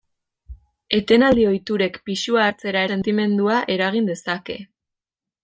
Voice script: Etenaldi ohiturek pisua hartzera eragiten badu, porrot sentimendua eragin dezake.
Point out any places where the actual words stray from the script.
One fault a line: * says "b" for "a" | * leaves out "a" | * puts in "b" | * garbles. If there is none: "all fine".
* leaves out "eragiten badu porrot"